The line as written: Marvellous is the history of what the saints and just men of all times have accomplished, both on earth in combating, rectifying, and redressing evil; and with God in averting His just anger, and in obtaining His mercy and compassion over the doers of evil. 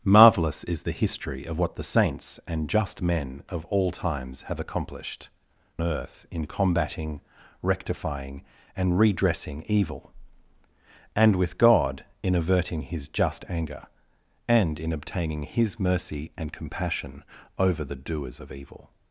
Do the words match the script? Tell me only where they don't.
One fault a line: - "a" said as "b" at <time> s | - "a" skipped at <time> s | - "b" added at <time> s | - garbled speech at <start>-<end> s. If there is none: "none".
- "both on" skipped at 5.3 s